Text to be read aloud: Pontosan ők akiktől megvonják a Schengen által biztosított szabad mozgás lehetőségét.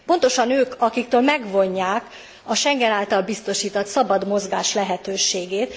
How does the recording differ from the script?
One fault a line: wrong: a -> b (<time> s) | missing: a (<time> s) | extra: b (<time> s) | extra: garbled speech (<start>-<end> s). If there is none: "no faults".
no faults